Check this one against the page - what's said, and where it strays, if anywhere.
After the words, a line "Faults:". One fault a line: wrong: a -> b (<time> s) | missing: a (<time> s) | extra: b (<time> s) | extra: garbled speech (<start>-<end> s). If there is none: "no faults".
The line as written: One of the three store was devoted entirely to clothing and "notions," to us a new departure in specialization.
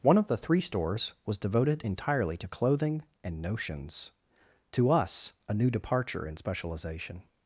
One of the three stores was devoted entirely to clothing and "notions," to us a new departure in specialization.
Faults:
wrong: store -> stores (0.6 s)